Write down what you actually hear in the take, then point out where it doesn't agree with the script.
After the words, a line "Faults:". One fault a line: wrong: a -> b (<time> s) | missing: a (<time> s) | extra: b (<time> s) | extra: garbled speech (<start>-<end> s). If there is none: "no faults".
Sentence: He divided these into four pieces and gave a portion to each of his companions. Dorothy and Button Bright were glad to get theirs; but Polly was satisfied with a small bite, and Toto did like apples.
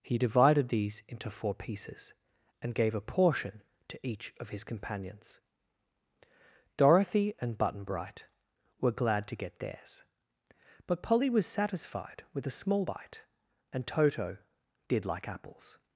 He divided these into four pieces and gave a portion to each of his companions. Dorothy and Button Bright were glad to get theirs; but Polly was satisfied with a small bite, and Toto did like apples.
Faults:
no faults